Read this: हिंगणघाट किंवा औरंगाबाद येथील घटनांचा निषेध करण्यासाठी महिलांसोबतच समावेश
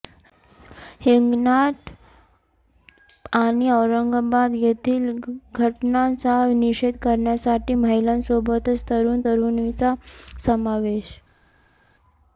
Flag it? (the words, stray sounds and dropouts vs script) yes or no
yes